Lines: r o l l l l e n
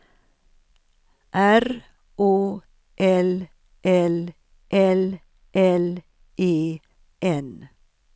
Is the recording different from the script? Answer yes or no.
no